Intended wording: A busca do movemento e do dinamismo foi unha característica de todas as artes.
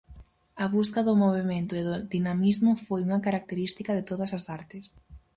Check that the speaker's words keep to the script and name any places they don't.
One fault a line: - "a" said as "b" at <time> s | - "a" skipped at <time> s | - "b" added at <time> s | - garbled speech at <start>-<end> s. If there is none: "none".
none